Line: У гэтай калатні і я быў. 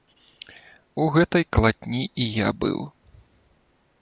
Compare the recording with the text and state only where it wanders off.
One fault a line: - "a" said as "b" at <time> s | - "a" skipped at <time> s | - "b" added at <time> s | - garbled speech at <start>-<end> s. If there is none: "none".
none